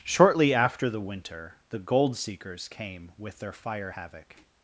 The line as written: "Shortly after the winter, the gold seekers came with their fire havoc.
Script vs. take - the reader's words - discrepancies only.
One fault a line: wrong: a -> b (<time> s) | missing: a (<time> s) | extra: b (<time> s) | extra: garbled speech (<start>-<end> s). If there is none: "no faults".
no faults